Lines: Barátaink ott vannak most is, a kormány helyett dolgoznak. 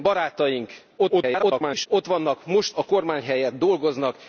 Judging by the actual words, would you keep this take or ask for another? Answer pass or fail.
fail